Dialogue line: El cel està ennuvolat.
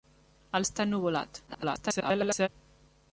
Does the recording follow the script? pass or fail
fail